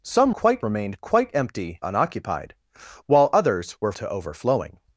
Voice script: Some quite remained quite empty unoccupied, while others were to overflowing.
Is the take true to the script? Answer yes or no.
yes